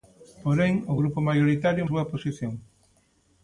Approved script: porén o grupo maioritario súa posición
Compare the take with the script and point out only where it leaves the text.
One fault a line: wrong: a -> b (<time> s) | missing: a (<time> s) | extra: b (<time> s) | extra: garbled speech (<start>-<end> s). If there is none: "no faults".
no faults